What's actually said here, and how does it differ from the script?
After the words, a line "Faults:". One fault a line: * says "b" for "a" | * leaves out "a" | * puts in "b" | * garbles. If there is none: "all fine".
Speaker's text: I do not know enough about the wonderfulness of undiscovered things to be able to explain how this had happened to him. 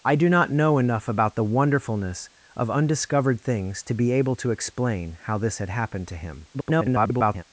I do not know enough about the wonderfulness of undiscovered things to be able to explain how this had happened to him. [garbled]
Faults:
* garbles